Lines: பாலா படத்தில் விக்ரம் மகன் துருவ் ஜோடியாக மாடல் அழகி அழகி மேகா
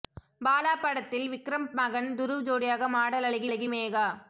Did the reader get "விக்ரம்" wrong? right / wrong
right